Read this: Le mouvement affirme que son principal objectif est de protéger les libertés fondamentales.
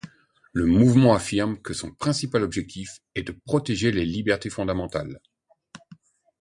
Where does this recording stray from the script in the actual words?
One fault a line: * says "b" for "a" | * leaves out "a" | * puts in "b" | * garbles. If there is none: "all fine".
all fine